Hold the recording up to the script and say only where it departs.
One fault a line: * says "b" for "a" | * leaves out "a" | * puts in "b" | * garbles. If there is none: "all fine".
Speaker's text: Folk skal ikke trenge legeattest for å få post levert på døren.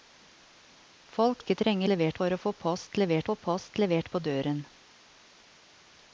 * leaves out "skal"
* says "levert" for "legeattest"
* puts in "få post levert"